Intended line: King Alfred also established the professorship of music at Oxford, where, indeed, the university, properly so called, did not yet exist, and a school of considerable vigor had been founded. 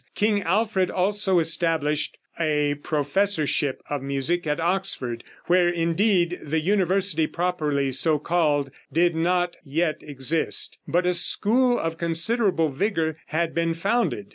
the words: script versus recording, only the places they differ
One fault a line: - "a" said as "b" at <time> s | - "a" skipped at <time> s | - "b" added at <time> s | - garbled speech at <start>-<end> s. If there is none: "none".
- "the" said as "a" at 2.4 s
- "and" said as "but" at 10.9 s